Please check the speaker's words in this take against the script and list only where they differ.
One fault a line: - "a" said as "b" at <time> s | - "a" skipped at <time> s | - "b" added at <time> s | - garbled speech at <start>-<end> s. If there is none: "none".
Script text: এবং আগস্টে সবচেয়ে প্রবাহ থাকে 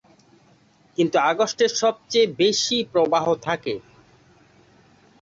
- "এবং" said as "কিন্তু" at 1.0 s
- "বেশি" added at 2.4 s